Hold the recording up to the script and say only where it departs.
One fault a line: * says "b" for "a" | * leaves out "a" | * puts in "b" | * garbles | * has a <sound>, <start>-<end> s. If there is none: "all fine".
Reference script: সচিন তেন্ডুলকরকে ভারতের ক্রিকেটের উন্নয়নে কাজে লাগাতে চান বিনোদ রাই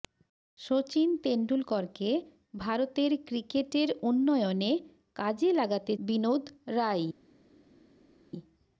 * leaves out "চান"